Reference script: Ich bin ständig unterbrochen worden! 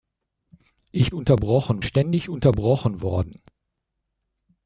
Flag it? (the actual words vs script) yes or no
yes